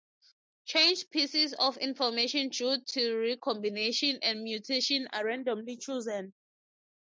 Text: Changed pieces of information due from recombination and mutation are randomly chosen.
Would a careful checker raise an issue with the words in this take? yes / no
yes